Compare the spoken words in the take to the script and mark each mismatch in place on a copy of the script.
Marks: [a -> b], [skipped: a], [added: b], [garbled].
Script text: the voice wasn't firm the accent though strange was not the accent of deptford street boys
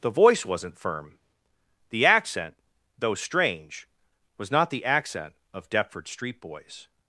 the voice wasn't firm the accent though strange was not the accent of deptford street boys